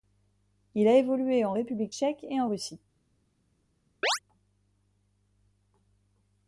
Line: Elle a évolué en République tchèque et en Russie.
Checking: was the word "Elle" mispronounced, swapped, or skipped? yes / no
yes